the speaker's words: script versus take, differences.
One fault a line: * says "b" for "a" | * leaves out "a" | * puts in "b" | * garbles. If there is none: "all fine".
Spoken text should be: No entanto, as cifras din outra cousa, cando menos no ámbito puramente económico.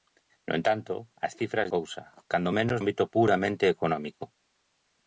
* leaves out "din outra"
* leaves out "no"